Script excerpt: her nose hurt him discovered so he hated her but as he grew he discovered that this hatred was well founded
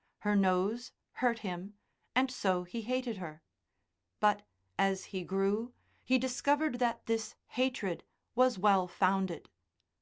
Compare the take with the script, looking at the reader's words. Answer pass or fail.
fail